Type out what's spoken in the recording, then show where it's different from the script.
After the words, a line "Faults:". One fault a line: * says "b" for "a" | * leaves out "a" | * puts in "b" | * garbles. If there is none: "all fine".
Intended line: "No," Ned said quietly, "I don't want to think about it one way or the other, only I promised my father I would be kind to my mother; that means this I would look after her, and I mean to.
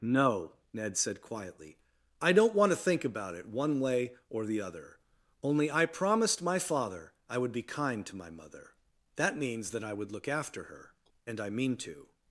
"No," Ned said quietly, "I don't want to think about it one way or the other, only I promised my father I would be kind to my mother; that means that I would look after her, and I mean to.
Faults:
* says "that" for "this"